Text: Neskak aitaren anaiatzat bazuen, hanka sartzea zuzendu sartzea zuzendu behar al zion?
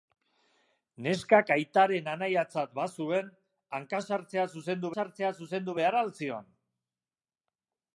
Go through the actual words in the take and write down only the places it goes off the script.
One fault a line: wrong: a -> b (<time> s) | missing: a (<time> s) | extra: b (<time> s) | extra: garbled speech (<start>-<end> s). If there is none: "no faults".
no faults